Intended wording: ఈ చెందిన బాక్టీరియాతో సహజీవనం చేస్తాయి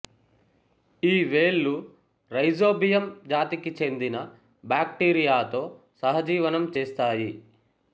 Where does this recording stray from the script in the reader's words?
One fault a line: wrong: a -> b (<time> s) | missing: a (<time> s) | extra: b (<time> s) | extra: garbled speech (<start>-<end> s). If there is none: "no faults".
extra: వేళ్ళు రైజోబియం జాతికి (1.2 s)